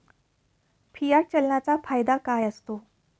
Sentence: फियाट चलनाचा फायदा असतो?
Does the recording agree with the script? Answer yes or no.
no